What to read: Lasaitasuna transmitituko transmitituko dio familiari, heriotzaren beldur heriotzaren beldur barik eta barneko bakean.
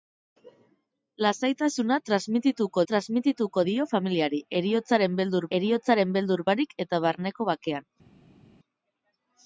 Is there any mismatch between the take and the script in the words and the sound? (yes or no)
no